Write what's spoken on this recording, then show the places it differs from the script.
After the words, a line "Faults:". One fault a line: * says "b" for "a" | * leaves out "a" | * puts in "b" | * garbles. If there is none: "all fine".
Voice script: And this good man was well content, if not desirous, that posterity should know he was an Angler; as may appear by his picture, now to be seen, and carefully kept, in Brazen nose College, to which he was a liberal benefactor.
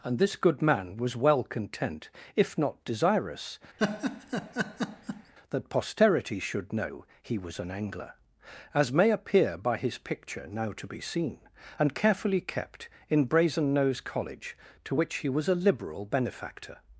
And this good man was well content, if not desirous, that posterity should know he was an Angler; as may appear by his picture, now to be seen, and carefully kept, in Brazen nose College, to which he was a liberal benefactor.
Faults:
all fine